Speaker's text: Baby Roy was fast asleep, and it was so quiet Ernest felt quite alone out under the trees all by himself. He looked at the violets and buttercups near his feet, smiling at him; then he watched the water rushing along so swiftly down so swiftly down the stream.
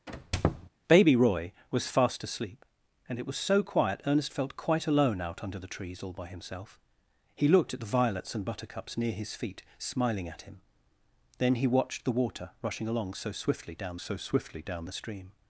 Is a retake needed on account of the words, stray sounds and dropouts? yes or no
yes